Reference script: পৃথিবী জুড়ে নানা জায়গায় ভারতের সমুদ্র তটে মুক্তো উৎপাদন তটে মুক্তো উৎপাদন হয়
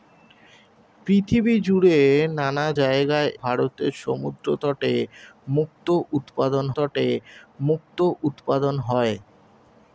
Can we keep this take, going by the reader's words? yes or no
yes